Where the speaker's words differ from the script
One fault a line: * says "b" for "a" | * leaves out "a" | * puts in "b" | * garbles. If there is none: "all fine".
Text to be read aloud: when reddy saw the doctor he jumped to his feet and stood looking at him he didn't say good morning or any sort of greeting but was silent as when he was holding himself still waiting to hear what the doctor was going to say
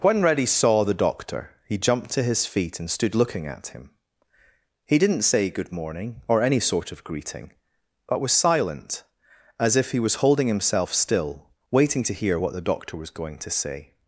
* says "if" for "when"